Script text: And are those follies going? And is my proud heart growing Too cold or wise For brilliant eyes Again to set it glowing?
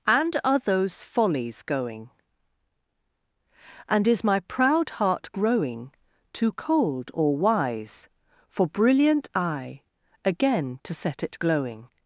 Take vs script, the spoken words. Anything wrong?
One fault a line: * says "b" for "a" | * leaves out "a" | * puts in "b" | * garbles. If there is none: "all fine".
* says "eye" for "eyes"